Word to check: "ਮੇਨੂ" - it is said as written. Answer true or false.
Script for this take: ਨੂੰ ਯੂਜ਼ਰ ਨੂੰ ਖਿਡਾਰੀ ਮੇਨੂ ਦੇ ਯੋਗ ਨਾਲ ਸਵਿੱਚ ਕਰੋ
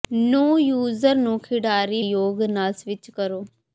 false